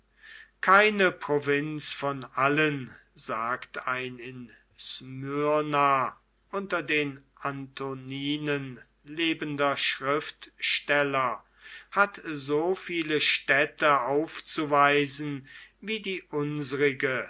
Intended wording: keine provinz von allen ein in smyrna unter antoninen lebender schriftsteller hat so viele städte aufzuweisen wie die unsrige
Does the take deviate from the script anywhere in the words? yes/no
yes